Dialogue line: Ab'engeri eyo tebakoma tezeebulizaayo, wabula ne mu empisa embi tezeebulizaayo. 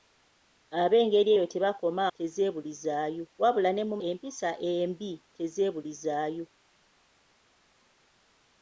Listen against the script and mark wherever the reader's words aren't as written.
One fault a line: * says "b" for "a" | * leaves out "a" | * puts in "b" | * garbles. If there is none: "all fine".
all fine